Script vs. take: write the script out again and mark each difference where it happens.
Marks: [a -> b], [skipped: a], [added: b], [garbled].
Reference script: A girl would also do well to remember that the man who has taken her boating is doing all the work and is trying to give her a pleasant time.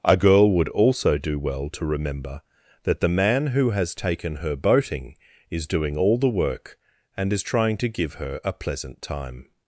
A girl would also do well to remember that the man who has taken her boating is doing all the work and is trying to give her a pleasant time.